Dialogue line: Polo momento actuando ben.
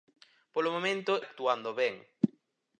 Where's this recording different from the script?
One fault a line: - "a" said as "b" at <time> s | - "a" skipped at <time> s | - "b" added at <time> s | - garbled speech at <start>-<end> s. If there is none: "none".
none